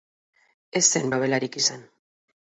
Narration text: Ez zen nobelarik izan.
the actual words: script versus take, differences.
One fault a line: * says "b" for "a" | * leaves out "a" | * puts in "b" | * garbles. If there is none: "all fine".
all fine